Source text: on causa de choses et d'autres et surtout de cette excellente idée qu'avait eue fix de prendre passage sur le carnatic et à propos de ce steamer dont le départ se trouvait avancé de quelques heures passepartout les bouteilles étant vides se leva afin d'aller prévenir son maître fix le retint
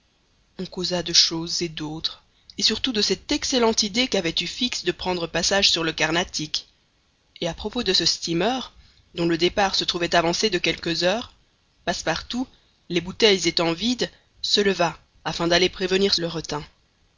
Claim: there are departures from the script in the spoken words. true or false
true